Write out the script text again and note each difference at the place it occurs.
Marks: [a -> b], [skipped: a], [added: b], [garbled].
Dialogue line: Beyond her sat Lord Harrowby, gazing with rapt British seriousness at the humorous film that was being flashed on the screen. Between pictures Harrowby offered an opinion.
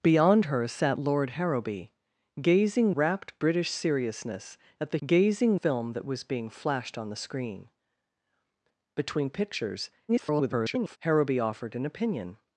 Beyond her sat Lord Harrowby, gazing [skipped: with] rapt British seriousness at the [humorous -> gazing] film that was being flashed on the screen. Between pictures [garbled] Harrowby offered an opinion.